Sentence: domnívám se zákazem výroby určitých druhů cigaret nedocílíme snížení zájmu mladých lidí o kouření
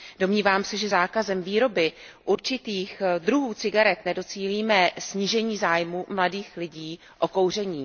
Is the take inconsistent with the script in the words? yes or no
yes